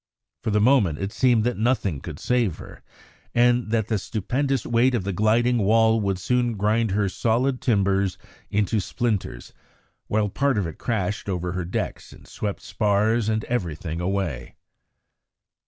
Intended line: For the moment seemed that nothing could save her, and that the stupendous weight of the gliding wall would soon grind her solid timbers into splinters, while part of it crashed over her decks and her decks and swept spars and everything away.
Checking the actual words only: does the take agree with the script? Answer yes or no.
no